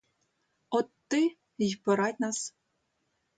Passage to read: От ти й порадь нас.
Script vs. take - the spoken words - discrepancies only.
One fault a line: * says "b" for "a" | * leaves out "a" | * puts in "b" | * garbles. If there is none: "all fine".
all fine